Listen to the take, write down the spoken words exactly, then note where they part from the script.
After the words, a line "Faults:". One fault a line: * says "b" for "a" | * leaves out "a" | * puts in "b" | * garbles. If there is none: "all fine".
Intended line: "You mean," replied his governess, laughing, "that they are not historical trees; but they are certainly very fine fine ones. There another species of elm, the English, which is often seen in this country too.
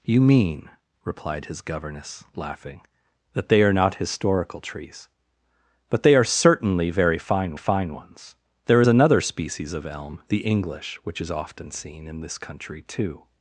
"You mean," replied his governess, laughing, "that they are not historical trees; but they are certainly very fine fine ones. There another species of elm, the English, which is often seen in this country too.
Faults:
all fine